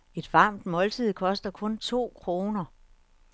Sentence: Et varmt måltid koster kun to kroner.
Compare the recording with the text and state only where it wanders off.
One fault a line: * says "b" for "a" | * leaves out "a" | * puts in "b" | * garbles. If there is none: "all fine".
all fine